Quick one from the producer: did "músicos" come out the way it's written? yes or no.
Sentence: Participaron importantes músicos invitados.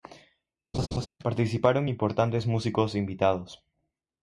yes